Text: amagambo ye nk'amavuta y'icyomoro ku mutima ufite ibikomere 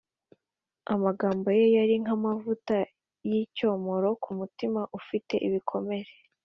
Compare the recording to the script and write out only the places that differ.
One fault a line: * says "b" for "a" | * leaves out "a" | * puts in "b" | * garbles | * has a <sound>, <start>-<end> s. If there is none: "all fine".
* puts in "yari"